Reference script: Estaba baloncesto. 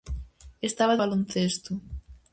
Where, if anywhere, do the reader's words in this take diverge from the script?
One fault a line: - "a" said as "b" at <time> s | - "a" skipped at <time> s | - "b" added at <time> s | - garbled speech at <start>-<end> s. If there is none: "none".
none